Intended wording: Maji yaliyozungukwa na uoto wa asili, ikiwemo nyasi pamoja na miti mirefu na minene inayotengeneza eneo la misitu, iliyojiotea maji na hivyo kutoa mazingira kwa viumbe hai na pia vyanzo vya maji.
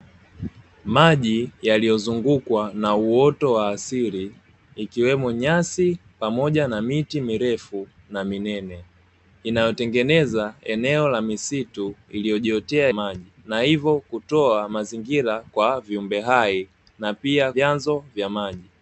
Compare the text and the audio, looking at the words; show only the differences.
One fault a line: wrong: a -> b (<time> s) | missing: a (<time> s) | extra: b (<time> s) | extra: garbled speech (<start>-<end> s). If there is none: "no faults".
no faults